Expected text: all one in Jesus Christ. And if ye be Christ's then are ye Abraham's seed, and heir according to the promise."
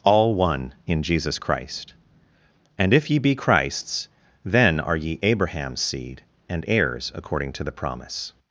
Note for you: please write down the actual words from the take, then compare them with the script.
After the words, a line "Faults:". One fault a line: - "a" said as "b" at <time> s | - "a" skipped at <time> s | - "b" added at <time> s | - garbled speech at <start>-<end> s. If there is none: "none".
all one in Jesus Christ. And if ye be Christ's then are ye Abraham's seed, and heirs according to the promise."
Faults:
- "heir" said as "heirs" at 6.7 s